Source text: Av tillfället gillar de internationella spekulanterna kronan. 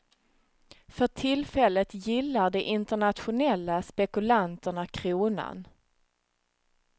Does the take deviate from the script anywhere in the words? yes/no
yes